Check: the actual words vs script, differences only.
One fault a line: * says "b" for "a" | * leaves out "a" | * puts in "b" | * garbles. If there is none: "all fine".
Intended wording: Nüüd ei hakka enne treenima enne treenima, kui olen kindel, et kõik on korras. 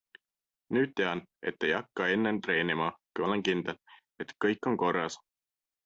* puts in "tean et"
* leaves out "enne treenima"